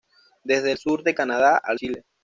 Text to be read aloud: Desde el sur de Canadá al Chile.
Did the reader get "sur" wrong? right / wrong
right